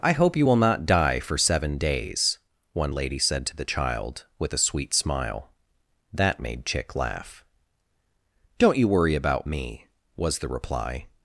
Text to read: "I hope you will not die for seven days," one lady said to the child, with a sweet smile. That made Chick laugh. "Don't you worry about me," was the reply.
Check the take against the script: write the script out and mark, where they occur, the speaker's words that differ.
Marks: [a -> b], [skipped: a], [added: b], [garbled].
"I hope you will not die for seven days," one lady said to the child, with a sweet smile. That made Chick laugh. "Don't you worry about me," was the reply.